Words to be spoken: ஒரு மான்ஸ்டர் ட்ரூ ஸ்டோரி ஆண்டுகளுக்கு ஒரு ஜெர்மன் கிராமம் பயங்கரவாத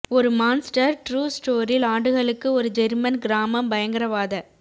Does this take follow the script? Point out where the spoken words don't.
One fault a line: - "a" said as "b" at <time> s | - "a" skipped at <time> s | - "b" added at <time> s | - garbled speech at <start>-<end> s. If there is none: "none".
none